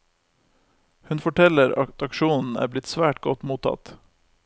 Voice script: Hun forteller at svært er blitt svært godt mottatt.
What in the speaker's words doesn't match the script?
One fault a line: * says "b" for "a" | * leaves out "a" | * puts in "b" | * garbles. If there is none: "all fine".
* says "aksjonen" for "svært"